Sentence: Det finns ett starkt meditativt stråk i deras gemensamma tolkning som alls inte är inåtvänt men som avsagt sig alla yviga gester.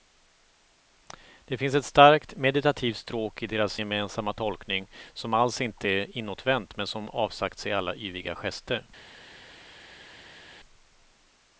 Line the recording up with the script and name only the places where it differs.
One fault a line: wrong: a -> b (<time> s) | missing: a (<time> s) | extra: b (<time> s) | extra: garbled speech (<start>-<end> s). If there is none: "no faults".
no faults